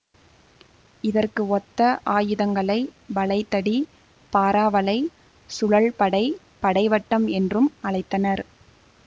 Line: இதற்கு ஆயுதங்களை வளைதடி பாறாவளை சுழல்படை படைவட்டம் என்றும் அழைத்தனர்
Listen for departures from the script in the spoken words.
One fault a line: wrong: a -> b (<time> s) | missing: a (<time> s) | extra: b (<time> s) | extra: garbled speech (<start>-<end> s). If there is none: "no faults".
extra: ஒத்த (1.5 s)